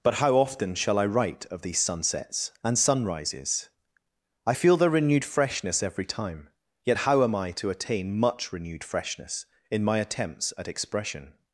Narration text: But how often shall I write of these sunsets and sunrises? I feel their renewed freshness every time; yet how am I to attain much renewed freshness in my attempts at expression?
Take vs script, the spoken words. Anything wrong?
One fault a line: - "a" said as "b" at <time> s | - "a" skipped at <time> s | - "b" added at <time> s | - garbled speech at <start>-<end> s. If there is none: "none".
none